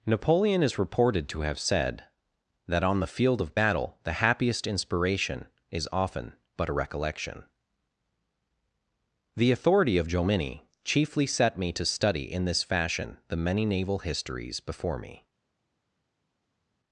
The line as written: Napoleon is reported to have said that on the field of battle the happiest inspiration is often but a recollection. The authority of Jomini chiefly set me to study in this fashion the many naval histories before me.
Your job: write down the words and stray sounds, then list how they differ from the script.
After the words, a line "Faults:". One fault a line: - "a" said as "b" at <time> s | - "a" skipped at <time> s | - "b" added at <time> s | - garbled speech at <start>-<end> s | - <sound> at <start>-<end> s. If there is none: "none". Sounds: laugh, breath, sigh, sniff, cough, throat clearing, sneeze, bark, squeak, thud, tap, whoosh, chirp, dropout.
Napoleon is reported to have said that on the field of battle the happiest inspiration is often but a recollection. The authority of Jomini chiefly set me to study in this fashion the many naval histories before me.
Faults:
none